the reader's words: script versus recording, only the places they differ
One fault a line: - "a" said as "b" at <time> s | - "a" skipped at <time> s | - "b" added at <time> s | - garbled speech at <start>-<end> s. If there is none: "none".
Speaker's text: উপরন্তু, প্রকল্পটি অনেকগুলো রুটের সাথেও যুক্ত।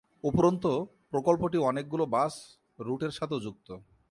- "বাস" added at 2.0 s